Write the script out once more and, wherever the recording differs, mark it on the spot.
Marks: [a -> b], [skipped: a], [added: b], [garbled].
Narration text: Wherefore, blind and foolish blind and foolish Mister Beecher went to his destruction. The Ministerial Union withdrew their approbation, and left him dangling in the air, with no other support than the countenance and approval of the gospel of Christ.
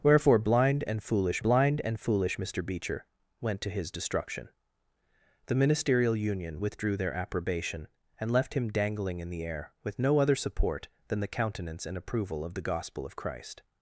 Wherefore, blind and foolish blind and foolish Mister Beecher went to his destruction. The Ministerial Union withdrew their approbation, and left him dangling in the air, with no other support than the countenance and approval of the gospel of Christ.